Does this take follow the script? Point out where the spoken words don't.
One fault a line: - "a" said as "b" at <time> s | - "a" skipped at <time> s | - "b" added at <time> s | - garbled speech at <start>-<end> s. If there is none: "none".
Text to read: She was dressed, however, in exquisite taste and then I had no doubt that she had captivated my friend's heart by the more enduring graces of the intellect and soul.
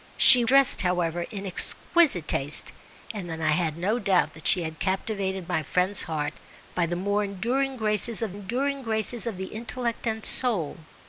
- "was" skipped at 0.5 s
- "enduring graces of" added at 8.3 s